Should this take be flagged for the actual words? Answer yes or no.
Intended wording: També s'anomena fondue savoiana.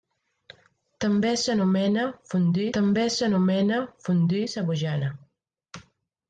yes